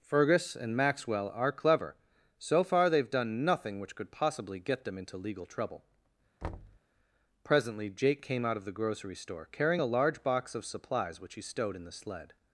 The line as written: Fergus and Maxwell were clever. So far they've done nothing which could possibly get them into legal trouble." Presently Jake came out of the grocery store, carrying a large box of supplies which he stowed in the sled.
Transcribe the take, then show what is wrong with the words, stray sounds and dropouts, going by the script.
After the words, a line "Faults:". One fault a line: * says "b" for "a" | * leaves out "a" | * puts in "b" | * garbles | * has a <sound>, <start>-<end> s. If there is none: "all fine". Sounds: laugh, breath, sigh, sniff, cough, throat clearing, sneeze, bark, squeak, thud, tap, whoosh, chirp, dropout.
Fergus and Maxwell are clever. So far they've done nothing which could possibly get them into legal trouble." Presently Jake came out of the grocery store, carrying a large box of supplies which he stowed in the sled.
Faults:
* says "are" for "were"
* has a thud, 6.4-6.8 s